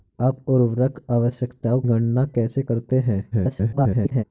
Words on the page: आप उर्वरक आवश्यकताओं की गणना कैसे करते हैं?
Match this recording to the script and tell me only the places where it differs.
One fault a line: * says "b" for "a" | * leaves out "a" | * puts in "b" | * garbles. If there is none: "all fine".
* leaves out "की"
* garbles